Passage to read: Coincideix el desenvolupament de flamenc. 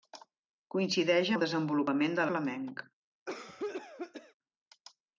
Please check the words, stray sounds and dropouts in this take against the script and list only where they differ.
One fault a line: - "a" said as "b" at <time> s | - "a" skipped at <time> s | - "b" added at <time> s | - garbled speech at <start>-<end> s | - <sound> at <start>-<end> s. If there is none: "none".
- cough at 3.3-4.3 s